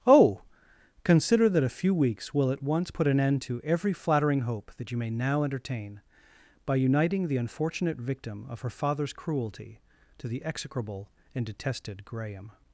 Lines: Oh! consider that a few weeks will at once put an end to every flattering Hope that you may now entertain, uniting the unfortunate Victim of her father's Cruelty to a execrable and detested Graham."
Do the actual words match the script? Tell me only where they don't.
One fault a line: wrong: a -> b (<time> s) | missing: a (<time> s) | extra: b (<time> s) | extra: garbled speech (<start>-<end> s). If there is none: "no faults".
extra: by (6.7 s)
wrong: a -> the (10.3 s)